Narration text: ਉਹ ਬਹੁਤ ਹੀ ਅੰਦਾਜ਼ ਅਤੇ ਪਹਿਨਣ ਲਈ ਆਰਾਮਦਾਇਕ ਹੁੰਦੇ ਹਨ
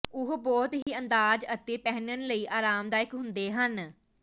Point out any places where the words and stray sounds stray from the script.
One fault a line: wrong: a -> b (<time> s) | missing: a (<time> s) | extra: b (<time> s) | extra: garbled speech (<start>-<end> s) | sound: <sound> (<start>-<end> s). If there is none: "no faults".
sound: dropout (0.8-0.9 s)